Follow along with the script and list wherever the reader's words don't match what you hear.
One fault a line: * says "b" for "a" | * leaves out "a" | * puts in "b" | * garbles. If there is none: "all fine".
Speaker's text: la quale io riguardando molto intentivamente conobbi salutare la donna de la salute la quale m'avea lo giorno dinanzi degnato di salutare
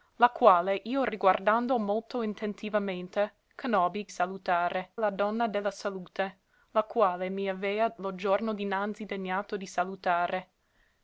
all fine